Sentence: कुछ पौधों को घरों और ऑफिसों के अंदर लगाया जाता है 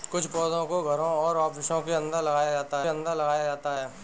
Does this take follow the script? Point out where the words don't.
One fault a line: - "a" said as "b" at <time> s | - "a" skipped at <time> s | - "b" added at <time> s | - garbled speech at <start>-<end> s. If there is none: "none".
- "अंदर लगाया जाता" added at 2.9 s